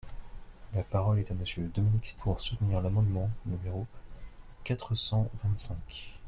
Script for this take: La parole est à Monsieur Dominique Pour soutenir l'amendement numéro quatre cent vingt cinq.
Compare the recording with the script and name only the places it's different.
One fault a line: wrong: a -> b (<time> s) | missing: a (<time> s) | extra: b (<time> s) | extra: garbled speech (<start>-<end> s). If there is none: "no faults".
no faults